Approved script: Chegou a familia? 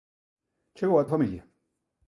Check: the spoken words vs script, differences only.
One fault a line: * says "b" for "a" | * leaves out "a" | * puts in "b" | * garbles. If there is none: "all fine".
all fine